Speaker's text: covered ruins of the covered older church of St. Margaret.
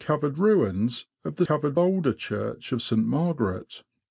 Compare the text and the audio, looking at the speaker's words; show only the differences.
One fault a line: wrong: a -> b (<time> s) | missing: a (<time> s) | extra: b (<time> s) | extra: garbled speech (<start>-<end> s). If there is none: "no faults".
no faults